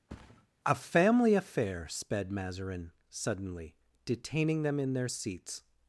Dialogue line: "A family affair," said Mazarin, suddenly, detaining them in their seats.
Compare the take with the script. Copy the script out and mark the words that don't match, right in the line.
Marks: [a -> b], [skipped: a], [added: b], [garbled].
"A family affair," [said -> sped] Mazarin, suddenly, detaining them in their seats.